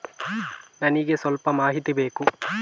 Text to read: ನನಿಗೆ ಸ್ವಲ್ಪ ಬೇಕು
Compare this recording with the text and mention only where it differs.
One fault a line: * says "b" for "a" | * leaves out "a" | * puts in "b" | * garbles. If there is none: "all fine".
* puts in "ಮಾಹಿತಿ"